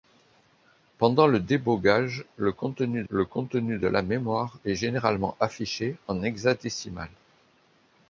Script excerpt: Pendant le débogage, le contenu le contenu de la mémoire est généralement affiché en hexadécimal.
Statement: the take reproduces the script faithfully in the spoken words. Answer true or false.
true